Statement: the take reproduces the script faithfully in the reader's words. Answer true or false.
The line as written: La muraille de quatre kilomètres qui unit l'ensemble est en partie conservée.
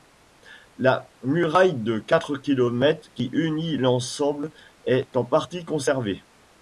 true